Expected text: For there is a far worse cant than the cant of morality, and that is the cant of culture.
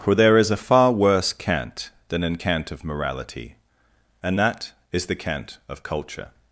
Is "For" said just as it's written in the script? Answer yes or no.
yes